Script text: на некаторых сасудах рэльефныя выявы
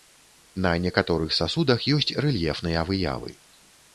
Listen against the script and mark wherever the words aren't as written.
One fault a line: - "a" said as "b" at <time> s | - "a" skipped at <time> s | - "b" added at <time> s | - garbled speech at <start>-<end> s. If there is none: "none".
- "ёсць" added at 2.0 s